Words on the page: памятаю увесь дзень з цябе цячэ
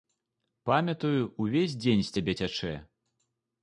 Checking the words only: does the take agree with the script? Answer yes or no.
yes